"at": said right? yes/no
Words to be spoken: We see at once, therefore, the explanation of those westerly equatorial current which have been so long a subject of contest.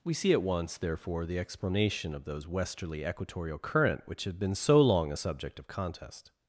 yes